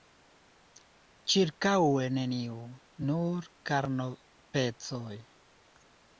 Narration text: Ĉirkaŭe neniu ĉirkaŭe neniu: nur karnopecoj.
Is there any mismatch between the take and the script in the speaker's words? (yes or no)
yes